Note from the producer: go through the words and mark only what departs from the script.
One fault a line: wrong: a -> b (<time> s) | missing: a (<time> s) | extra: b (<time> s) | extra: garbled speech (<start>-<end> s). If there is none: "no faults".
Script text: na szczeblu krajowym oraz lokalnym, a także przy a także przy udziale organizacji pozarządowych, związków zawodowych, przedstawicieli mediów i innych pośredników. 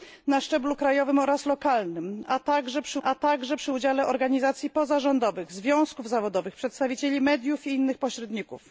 no faults